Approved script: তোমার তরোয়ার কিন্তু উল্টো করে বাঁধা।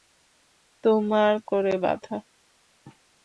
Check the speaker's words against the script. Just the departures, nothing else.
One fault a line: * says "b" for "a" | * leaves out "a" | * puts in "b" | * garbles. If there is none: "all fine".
* leaves out "তরোয়ার কিন্তু উল্টো"